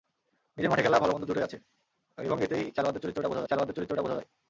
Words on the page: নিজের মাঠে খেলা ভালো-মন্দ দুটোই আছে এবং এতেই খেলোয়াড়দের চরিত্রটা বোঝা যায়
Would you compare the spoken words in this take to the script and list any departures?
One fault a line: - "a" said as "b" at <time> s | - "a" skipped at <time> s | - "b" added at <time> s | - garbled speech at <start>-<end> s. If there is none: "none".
- "খেলোয়াড়দের চরিত্রটা বোঝা" added at 3.5 s